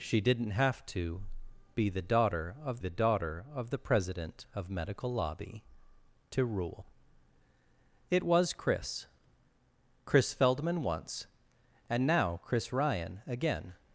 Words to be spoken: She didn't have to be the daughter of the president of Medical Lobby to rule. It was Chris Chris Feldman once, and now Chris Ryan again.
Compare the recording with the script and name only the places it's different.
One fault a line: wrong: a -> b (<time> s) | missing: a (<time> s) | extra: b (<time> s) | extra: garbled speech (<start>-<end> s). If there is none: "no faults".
extra: daughter of the (2.9 s)